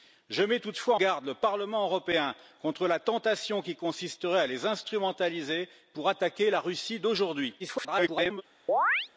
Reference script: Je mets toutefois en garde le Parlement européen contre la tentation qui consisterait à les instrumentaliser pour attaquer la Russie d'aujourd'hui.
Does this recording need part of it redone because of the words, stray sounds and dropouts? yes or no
yes